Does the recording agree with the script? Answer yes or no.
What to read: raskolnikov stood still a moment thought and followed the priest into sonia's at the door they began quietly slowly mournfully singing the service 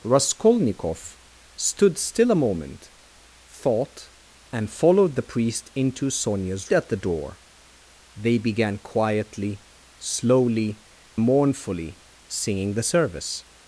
yes